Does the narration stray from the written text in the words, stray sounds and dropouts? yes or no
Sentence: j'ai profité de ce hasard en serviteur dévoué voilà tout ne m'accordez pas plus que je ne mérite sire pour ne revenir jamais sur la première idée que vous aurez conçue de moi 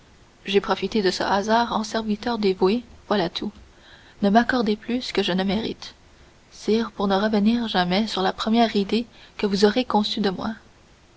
yes